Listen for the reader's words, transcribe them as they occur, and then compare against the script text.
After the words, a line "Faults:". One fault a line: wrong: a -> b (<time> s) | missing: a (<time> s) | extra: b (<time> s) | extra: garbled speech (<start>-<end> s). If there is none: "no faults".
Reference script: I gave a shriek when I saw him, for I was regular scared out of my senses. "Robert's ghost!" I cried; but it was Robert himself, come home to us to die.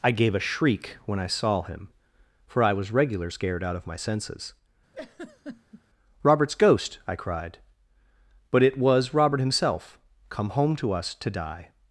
I gave a shriek when I saw him, for I was regular scared out of my senses. "Robert's ghost!" I cried; but it was Robert himself, come home to us to die.
Faults:
no faults